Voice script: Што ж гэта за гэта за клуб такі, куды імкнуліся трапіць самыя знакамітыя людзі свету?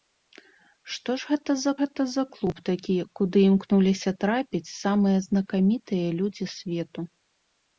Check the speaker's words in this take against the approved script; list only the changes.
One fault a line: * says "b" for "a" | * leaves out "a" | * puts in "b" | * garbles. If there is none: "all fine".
all fine